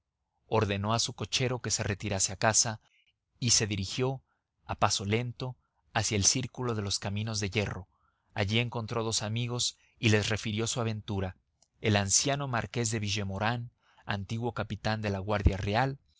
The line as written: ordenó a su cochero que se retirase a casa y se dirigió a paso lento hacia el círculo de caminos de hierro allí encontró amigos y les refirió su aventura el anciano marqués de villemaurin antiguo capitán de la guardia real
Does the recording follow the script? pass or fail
fail